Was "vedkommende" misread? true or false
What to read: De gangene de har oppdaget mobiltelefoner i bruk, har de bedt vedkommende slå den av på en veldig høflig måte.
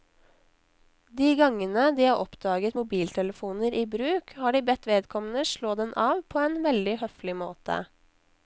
false